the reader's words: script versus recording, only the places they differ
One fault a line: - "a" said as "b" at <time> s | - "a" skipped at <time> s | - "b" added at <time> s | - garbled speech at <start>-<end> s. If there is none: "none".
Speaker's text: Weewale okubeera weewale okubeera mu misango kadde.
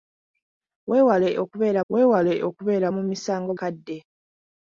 none